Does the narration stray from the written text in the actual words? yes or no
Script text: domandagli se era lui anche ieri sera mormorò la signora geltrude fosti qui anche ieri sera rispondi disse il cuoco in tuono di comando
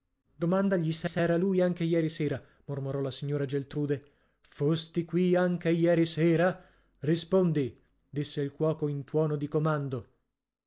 yes